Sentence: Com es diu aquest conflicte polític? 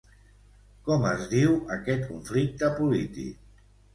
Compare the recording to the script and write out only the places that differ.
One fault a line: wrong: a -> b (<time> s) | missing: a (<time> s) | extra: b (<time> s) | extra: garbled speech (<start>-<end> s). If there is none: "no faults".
no faults